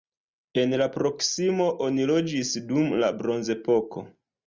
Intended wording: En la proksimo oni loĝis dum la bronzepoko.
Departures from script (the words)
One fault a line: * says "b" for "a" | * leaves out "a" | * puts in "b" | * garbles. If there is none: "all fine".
all fine